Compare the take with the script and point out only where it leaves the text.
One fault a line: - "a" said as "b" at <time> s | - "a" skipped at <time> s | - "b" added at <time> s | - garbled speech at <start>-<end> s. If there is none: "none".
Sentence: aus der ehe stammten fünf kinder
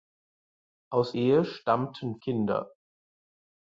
- "der" skipped at 1.1 s
- "fünf" skipped at 2.2 s